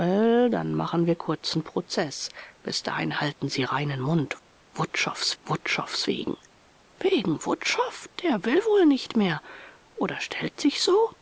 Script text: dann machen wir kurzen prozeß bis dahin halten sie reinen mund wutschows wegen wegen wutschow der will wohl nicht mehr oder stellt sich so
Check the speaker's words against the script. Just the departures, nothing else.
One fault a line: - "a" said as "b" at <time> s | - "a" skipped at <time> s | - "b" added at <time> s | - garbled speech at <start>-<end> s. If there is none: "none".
- "wutschows" added at 5.4 s